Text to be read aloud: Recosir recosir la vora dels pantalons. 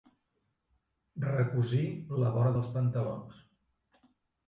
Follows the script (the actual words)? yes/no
no